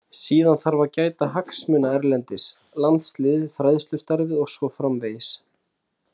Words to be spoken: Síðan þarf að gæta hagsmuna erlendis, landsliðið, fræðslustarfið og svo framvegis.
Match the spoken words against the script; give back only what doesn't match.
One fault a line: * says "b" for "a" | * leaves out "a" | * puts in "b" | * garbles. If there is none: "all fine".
all fine